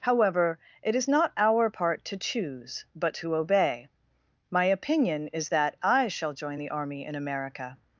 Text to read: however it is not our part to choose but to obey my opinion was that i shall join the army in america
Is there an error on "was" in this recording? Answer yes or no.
yes